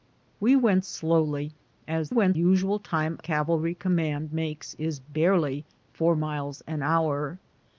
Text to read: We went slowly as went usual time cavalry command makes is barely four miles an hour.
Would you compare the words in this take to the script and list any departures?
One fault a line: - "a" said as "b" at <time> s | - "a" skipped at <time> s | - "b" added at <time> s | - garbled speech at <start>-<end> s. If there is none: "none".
none